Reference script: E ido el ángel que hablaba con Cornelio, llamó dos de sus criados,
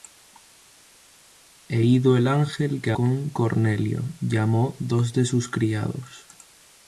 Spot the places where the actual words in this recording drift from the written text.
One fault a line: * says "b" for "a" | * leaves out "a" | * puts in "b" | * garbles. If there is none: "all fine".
* leaves out "hablaba"